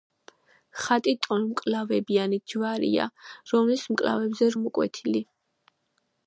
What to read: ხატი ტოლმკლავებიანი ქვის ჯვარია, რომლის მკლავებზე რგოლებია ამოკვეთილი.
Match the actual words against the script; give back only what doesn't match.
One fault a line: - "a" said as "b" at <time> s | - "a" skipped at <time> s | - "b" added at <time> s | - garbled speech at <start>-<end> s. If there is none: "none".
- "ქვის" skipped at 2.4 s
- "რგოლებია" skipped at 4.5 s